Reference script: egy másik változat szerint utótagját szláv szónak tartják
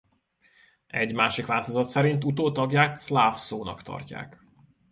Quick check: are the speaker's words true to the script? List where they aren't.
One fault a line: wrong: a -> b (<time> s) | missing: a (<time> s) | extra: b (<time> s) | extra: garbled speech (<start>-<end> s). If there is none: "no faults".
no faults